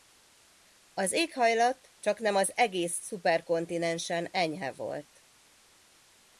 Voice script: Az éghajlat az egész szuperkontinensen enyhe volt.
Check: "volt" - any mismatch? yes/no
no